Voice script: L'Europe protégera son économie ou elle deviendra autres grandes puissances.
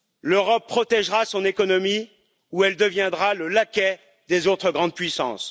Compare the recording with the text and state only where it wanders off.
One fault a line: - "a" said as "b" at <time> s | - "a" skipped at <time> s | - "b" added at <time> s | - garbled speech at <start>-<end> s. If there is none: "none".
- "le laquais des" added at 3.3 s